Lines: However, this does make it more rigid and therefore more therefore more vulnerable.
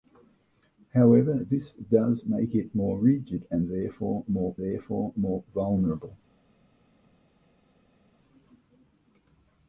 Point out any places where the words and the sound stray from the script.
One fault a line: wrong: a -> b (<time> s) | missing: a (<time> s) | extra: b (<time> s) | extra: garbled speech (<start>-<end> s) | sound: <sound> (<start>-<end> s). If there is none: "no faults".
no faults